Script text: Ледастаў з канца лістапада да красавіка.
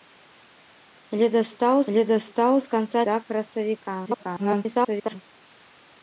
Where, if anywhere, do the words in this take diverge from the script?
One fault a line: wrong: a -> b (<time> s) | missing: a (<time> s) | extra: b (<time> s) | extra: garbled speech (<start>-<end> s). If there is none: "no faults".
extra: ледастаў (2.0 s)
missing: лістапада (3.0 s)
extra: garbled speech (4.1-5.2 s)